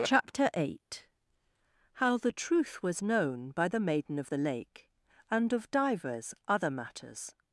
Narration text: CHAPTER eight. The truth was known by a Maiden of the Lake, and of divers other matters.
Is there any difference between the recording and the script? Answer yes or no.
yes